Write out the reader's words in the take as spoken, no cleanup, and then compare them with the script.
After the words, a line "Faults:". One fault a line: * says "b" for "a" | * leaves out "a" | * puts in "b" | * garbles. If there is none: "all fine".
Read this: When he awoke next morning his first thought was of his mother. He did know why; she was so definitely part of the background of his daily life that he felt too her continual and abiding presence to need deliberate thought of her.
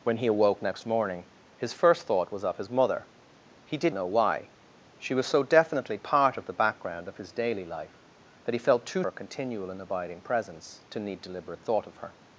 When he awoke next morning his first thought was of his mother. He did know why; she was so definitely part of the background of his daily life that he felt too her continual and abiding presence to need deliberate thought of her.
Faults:
all fine